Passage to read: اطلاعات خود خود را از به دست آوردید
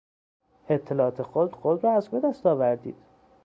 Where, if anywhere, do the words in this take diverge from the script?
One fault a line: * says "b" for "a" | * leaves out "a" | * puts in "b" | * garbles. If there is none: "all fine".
all fine